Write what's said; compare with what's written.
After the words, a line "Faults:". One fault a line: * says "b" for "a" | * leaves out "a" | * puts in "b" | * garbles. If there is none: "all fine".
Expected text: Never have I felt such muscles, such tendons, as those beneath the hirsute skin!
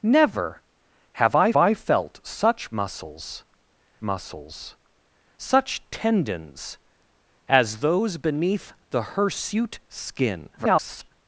Never have I I felt such muscles muscles, such tendons, as those beneath the hirsute skin! [garbled]
Faults:
* puts in "I"
* puts in "muscles"
* garbles